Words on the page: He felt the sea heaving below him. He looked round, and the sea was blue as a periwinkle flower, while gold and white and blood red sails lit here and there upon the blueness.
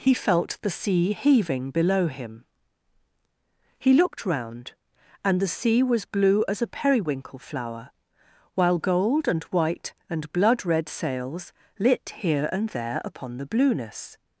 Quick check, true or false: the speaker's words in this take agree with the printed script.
true